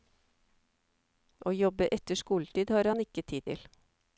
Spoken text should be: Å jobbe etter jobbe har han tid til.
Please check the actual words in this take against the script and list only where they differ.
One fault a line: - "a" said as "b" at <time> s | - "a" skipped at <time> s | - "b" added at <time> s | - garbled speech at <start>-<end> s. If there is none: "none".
- "jobbe" said as "skoletid" at 2.2 s
- "ikke" added at 3.0 s